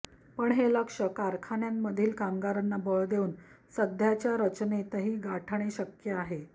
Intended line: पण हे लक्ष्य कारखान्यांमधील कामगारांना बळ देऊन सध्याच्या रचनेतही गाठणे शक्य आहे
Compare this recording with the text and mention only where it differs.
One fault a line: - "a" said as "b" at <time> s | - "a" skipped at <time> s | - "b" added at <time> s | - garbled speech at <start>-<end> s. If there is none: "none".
none